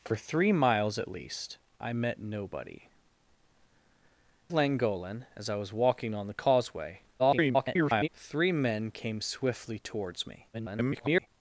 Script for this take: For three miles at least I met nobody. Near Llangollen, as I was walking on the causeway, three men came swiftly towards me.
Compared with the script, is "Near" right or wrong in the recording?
wrong